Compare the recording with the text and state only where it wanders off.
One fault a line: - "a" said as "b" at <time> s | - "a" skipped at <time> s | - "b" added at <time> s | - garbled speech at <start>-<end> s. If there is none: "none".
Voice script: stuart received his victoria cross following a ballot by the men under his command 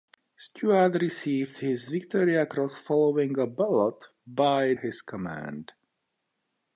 - "the men under" skipped at 4.7 s